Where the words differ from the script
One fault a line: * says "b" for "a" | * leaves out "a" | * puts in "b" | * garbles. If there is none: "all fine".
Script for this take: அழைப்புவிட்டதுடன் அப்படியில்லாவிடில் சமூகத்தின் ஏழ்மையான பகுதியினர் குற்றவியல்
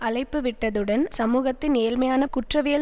* leaves out "அப்படியில்லாவிடில்"
* leaves out "பகுதியினர்"